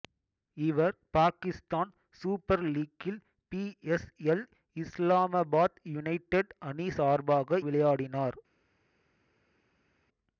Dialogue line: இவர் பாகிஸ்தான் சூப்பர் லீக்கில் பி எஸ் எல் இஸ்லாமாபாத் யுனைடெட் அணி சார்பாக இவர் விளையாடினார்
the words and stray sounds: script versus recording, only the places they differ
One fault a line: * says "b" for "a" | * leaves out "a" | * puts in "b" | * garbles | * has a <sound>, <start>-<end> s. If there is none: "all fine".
* leaves out "இவர்"